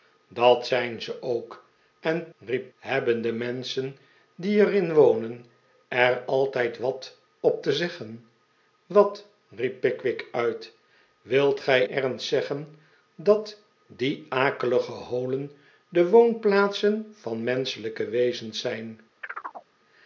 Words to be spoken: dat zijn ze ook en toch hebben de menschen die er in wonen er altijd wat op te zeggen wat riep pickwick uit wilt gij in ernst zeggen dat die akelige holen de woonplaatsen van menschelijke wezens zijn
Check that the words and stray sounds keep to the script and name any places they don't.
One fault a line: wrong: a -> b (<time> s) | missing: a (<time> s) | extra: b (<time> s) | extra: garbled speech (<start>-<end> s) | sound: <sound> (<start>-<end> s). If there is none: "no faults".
wrong: toch -> riep (2.4 s)
missing: in (11.8 s)
sound: chirp (19.2-19.7 s)